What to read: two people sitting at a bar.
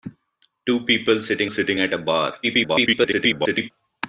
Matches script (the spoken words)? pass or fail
fail